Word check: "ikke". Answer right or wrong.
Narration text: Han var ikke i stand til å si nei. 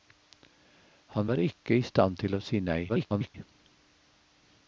right